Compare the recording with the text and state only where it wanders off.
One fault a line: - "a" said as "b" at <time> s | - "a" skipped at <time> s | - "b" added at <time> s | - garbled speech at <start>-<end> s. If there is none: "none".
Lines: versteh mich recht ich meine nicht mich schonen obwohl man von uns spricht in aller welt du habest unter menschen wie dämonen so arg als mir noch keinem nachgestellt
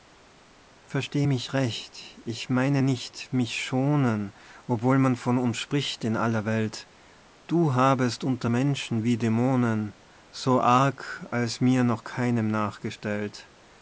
none